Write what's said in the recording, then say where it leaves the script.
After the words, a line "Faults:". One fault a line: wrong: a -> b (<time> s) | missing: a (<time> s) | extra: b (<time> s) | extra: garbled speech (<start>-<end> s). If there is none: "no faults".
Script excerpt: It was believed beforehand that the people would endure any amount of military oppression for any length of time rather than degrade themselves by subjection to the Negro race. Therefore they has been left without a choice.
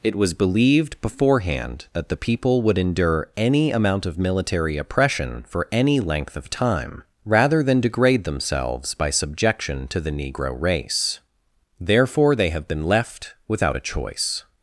It was believed beforehand that the people would endure any amount of military oppression for any length of time rather than degrade themselves by subjection to the Negro race. Therefore they have been left without a choice.
Faults:
wrong: has -> have (12.5 s)